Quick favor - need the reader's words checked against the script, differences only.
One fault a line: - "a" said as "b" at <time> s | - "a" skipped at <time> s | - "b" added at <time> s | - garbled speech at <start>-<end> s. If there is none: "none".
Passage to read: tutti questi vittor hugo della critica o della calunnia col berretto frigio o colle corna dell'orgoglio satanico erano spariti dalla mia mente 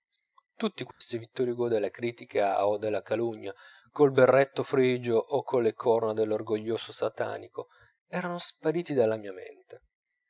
none